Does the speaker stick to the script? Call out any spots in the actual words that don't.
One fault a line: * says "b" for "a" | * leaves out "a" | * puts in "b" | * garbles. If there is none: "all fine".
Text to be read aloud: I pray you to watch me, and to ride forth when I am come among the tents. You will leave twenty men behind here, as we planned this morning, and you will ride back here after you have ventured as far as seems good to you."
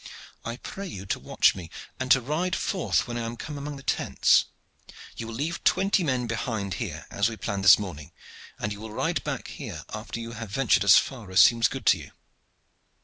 all fine